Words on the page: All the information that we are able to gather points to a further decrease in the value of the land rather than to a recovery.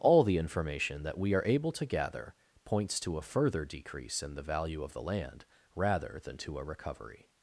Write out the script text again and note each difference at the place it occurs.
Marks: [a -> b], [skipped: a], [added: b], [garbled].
All the information that we are able to gather points to a further decrease in the value of the land rather than to a recovery.